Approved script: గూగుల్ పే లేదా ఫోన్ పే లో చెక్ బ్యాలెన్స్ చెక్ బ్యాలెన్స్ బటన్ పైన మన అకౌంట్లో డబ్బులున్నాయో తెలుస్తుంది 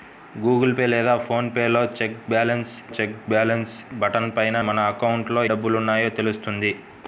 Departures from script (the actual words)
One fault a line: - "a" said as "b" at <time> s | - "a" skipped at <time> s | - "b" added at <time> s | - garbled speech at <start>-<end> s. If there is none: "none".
none